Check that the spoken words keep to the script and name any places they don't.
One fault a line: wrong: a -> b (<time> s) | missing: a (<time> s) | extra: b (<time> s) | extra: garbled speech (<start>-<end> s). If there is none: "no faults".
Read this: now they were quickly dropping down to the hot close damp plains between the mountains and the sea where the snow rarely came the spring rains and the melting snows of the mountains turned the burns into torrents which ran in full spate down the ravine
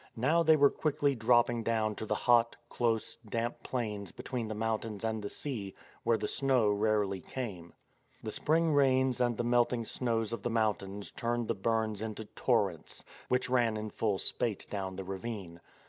no faults